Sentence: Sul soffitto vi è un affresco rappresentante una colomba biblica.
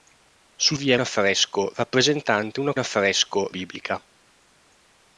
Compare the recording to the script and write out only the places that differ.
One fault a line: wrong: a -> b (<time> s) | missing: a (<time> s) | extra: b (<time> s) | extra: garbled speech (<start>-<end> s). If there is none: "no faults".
missing: soffitto (0.8 s)
missing: un (1.0 s)
wrong: colomba -> affresco (2.8 s)